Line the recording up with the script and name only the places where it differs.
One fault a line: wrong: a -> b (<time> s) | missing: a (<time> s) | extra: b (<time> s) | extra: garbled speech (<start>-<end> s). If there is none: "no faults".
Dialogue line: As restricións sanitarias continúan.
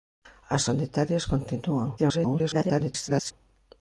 missing: restricións (0.6 s)
extra: garbled speech (2.0-3.3 s)